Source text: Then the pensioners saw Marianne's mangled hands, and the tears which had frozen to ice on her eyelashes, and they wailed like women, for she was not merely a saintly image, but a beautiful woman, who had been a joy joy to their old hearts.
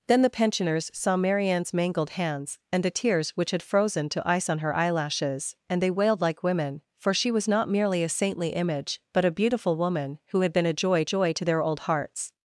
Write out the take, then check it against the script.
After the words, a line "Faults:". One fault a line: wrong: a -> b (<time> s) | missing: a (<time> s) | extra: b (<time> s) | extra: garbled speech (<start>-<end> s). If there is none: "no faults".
Then the pensioners saw Marianne's mangled hands, and the tears which had frozen to ice on her eyelashes, and they wailed like women, for she was not merely a saintly image, but a beautiful woman, who had been a joy joy to their old hearts.
Faults:
no faults